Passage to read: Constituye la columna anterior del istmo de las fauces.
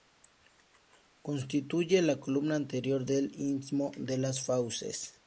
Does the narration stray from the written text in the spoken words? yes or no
no